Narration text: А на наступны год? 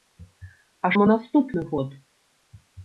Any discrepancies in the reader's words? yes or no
no